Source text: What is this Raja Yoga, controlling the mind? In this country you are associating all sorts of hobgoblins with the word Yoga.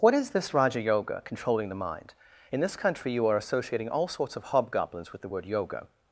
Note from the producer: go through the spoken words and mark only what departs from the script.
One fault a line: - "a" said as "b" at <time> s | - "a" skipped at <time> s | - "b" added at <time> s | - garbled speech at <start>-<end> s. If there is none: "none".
none